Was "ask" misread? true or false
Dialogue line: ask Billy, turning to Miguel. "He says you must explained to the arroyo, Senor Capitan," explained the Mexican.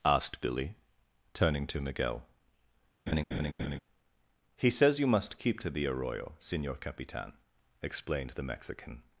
true